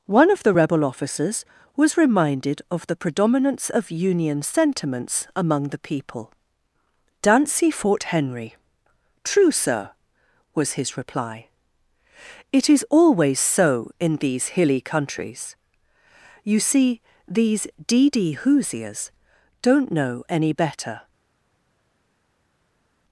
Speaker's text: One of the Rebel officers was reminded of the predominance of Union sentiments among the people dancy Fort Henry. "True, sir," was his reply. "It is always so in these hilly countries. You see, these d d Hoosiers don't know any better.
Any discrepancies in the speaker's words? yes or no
no